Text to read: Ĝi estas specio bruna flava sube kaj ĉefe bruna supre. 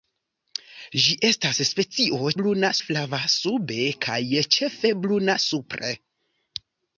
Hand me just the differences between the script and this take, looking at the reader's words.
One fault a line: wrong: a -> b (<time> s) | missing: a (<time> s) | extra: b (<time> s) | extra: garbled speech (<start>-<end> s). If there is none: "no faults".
no faults